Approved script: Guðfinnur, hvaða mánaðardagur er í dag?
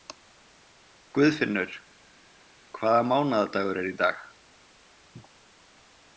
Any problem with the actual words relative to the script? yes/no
no